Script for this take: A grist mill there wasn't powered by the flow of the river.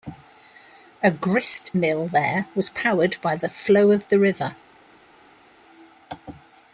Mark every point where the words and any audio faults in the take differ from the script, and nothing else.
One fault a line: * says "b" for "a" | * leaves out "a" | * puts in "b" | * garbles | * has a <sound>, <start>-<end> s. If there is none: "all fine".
* says "was" for "wasn't"